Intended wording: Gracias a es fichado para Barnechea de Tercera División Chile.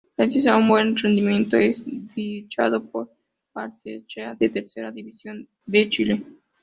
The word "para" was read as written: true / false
false